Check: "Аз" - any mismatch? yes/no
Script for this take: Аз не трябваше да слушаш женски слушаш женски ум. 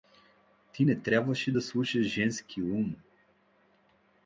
yes